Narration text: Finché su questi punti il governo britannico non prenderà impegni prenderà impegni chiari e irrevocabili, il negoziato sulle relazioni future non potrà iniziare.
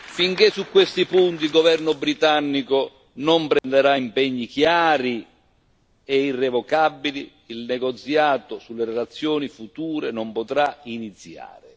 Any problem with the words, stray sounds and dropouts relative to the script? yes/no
yes